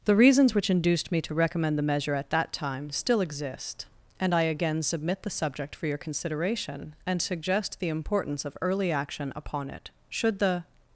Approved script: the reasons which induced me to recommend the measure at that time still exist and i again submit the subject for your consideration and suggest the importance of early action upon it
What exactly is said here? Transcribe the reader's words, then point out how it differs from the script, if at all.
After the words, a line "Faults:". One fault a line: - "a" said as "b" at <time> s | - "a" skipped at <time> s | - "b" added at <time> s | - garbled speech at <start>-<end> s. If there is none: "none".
the reasons which induced me to recommend the measure at that time still exist and i again submit the subject for your consideration and suggest the importance of early action upon it should the
Faults:
- "should the" added at 10.1 s